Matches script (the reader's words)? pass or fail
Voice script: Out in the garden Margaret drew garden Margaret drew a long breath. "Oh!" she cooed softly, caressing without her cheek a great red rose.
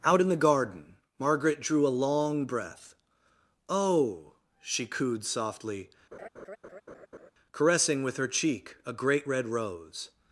fail